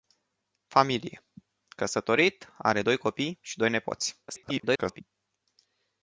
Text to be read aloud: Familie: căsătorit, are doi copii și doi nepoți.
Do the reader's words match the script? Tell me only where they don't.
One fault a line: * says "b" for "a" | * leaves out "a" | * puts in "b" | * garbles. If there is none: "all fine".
* garbles